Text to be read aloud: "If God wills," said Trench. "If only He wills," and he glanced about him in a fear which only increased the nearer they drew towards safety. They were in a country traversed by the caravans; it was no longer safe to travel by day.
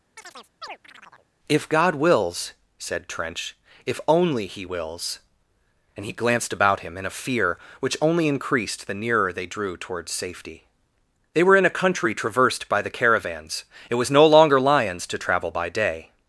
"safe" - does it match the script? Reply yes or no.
no